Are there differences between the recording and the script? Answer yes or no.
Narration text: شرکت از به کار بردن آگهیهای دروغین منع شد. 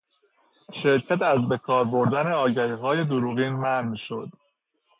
no